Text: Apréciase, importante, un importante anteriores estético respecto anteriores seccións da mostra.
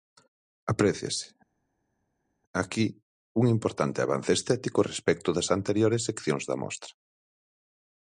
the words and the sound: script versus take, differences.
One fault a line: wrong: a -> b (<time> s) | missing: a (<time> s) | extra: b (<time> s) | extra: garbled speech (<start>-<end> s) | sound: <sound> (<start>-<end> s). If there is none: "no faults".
wrong: importante -> aquí (2.6 s)
wrong: anteriores -> avance (4.0 s)
extra: das (5.4 s)